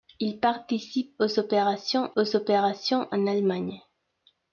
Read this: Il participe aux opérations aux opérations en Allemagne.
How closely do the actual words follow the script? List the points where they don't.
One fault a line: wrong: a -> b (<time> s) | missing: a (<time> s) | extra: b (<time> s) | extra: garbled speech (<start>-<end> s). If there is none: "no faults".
no faults